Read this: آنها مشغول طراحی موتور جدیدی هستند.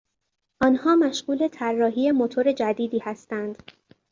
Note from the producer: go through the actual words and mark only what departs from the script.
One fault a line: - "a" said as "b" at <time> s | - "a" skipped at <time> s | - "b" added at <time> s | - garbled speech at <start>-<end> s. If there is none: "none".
none